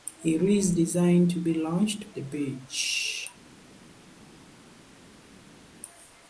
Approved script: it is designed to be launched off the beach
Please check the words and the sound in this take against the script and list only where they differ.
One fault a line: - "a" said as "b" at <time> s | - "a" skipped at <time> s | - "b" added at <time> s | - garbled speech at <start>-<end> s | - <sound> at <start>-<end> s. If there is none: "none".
- "off" skipped at 2.1 s